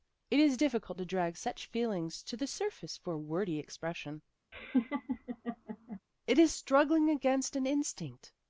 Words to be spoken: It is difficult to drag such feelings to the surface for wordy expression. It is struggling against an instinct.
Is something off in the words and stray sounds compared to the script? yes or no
yes